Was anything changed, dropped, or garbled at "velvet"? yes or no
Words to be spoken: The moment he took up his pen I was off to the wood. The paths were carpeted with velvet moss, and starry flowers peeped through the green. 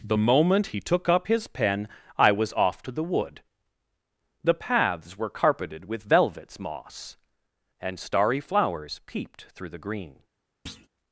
yes